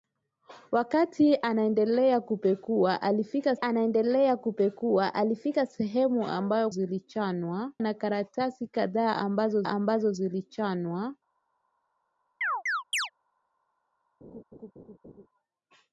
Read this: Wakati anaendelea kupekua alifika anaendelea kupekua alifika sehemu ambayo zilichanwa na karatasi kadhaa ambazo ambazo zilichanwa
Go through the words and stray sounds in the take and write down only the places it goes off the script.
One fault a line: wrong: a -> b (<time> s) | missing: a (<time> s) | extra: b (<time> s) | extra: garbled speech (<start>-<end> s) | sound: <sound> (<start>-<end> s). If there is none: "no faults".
sound: chirp (12.4-13.1 s)
sound: laugh (14.2-15.3 s)